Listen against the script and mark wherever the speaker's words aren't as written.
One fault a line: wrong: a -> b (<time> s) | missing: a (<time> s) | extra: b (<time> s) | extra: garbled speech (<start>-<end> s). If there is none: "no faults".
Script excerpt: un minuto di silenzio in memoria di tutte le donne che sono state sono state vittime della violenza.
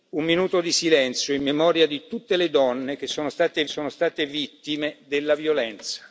no faults